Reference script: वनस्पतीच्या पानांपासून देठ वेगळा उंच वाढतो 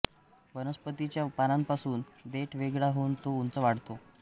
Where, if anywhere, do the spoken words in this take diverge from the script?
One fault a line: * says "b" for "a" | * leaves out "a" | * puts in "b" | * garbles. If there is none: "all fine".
* puts in "होऊन तो"